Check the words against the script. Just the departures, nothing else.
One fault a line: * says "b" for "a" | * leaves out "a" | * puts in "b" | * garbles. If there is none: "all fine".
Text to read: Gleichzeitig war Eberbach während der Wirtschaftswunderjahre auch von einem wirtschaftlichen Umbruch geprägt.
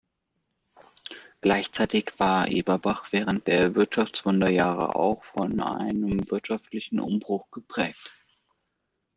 all fine